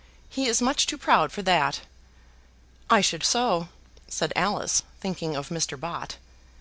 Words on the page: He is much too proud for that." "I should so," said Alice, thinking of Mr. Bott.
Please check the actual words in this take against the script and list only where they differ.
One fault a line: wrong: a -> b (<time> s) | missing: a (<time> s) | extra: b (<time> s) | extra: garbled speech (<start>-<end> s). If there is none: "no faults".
no faults